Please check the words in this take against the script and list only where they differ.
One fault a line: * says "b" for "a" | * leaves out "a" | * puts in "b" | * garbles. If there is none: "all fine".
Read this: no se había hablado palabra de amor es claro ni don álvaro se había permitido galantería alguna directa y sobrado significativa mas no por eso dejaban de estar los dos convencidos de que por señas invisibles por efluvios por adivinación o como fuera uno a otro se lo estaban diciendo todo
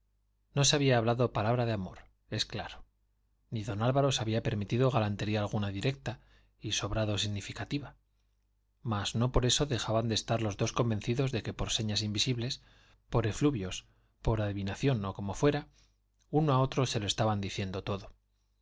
all fine